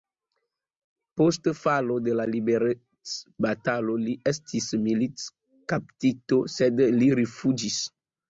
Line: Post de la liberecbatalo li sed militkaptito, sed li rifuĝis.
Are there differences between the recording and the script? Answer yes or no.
yes